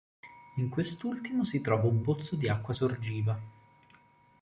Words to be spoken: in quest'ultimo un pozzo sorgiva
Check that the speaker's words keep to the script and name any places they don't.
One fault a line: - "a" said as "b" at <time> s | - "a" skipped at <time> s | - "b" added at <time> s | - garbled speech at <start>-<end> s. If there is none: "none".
- "si trova" added at 1.4 s
- "di acqua" added at 2.4 s